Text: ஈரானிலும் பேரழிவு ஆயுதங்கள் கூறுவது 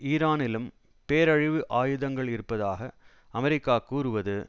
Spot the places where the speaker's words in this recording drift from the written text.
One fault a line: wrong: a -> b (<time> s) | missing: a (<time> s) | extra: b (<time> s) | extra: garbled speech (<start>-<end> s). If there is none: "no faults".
extra: இருப்பதாக அமெரிக்கா (2.3 s)